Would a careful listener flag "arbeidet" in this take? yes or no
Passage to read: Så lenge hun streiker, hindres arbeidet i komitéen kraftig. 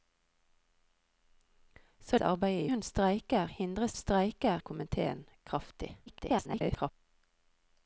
yes